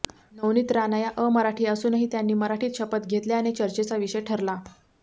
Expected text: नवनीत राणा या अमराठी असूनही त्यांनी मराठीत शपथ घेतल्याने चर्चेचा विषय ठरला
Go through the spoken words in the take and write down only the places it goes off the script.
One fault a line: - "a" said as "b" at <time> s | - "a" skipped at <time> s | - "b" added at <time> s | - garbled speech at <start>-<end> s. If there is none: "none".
none